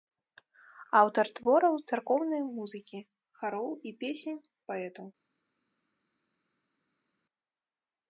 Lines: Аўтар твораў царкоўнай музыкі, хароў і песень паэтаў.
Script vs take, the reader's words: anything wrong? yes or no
no